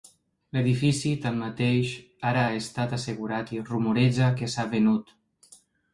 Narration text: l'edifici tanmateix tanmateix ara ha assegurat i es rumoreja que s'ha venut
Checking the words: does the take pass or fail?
fail